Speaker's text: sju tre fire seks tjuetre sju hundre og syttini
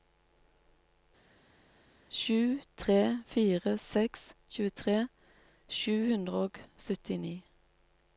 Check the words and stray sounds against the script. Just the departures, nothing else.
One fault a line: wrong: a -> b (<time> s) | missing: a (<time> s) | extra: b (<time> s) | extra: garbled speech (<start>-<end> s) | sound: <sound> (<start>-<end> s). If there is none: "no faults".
no faults